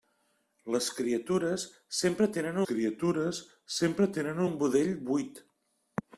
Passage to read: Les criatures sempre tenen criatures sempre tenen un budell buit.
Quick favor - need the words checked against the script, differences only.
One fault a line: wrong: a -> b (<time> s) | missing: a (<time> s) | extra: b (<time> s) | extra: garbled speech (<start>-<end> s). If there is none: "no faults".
no faults